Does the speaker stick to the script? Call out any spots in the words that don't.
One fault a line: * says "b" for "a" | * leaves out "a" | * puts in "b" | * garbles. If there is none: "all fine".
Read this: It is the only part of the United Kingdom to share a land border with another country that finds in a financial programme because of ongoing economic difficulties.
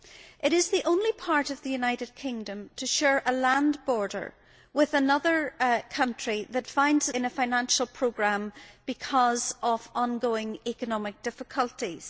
all fine